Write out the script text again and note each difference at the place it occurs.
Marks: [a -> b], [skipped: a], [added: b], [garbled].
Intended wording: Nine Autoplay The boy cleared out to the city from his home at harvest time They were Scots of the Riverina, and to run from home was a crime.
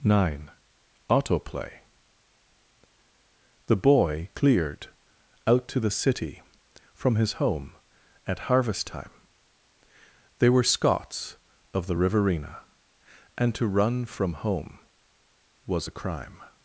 Nine Autoplay The boy cleared out to the city from his home at harvest time They were Scots of the Riverina, and to run from home was a crime.